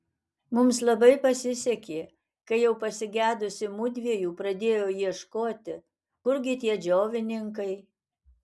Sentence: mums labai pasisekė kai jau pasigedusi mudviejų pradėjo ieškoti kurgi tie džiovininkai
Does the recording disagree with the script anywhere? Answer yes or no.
no